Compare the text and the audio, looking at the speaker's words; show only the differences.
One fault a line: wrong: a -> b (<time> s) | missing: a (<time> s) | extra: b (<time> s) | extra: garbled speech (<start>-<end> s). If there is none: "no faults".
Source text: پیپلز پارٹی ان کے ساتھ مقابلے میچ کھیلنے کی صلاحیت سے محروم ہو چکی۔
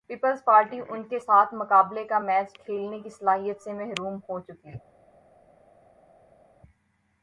extra: کا (2.0 s)